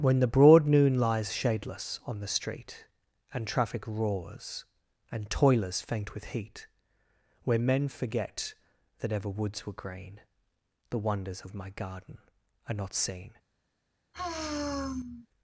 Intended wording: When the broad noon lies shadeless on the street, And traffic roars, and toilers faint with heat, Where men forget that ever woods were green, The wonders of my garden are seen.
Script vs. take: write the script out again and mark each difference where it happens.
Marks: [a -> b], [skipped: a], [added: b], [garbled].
When the broad noon lies shadeless on the street, And traffic roars, and toilers faint with heat, Where men forget that ever woods were green, The wonders of my garden are [added: not] seen.